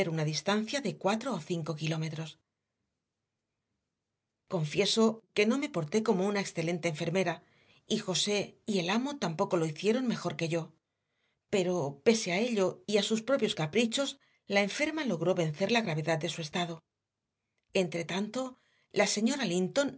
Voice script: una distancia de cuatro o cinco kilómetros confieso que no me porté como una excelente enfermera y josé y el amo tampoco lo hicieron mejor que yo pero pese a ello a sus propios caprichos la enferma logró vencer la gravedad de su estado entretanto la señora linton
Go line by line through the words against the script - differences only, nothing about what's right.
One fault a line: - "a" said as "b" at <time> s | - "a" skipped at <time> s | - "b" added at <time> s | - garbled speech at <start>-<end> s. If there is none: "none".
- "y" added at 12.8 s